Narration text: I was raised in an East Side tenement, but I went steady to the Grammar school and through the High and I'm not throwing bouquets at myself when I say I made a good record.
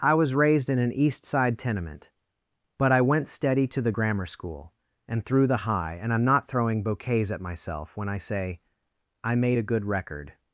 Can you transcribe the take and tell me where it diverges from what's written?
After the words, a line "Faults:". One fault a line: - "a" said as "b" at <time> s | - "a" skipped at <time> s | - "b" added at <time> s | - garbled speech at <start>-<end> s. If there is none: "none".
I was raised in an East Side tenement, but I went steady to the Grammar school and through the High and I'm not throwing bouquets at myself when I say I made a good record.
Faults:
none